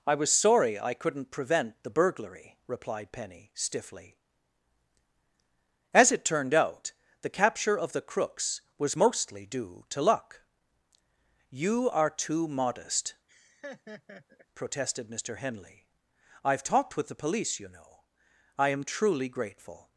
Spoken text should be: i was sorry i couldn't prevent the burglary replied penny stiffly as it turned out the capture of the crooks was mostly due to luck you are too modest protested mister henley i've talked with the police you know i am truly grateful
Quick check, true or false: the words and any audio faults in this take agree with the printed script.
false